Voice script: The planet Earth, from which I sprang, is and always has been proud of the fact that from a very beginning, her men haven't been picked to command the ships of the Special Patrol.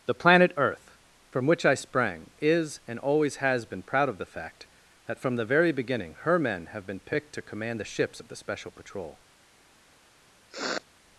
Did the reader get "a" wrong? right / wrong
wrong